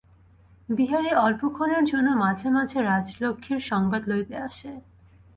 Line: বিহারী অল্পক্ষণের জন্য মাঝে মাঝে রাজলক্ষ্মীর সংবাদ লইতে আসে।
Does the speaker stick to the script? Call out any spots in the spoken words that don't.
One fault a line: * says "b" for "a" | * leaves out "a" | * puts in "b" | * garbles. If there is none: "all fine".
all fine